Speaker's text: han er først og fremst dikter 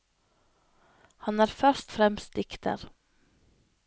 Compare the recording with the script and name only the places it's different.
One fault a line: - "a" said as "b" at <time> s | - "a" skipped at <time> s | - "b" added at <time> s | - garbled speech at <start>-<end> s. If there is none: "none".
- "og" skipped at 1.9 s